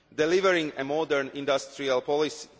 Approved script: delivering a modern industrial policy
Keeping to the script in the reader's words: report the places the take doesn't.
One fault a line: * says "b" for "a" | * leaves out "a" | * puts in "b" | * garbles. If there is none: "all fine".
all fine